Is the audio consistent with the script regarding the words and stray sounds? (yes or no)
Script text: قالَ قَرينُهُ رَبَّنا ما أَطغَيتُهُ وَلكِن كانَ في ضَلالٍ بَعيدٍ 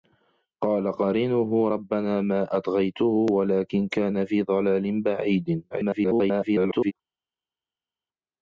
no